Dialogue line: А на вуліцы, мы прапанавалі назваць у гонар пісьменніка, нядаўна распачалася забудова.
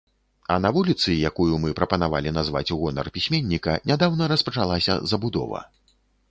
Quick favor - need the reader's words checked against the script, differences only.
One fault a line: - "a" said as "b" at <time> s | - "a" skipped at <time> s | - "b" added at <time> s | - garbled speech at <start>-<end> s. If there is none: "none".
- "якую" added at 1.3 s